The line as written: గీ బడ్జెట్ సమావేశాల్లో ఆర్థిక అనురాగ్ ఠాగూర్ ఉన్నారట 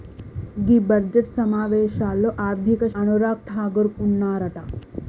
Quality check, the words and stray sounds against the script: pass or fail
pass